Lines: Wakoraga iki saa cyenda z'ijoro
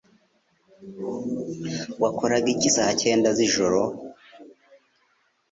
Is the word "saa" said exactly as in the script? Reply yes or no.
yes